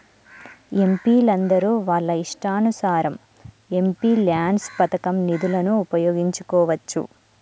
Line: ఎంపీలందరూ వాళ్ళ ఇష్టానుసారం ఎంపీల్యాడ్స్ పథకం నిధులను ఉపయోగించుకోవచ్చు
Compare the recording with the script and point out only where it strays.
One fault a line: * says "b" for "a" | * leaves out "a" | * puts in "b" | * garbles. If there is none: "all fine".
all fine